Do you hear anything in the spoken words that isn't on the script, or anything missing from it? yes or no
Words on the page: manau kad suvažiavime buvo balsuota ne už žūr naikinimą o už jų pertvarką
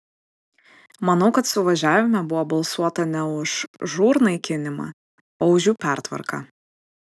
no